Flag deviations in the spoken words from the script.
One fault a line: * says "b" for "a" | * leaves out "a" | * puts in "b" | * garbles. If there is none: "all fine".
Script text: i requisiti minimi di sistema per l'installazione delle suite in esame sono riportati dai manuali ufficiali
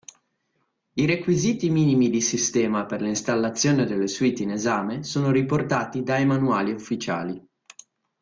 all fine